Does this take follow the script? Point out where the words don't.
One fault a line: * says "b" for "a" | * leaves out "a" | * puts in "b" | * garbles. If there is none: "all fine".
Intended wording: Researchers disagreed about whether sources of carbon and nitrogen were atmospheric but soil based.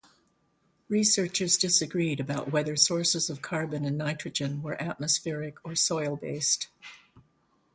* says "or" for "but"